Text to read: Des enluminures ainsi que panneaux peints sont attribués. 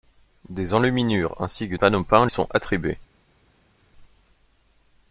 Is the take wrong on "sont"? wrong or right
right